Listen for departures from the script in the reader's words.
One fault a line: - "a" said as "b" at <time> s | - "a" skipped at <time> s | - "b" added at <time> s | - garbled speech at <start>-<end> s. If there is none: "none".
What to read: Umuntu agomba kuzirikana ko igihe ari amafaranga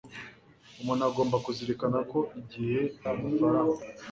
- "ari" skipped at 2.8 s